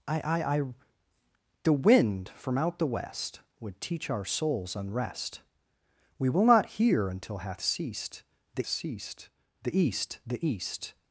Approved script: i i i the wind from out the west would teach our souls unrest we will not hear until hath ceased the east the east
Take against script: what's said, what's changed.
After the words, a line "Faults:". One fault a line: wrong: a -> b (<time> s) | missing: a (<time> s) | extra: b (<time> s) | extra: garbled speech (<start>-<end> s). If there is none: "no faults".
i i i the wind from out the west would teach our souls unrest we will not hear until hath ceased the ceased the east the east
Faults:
extra: ceased the (8.6 s)